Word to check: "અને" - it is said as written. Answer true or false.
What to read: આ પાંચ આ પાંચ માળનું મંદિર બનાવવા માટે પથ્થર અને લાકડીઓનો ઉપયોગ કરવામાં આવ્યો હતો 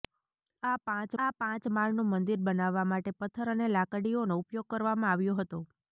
true